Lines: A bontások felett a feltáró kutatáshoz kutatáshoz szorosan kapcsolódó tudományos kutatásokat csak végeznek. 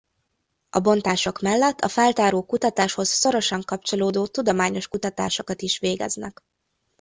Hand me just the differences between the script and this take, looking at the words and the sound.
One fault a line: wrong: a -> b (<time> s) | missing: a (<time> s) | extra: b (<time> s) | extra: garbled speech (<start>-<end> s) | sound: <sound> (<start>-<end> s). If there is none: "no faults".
wrong: felett -> mellett (1.4 s)
missing: kutatáshoz (3.1 s)
wrong: csak -> is (5.6 s)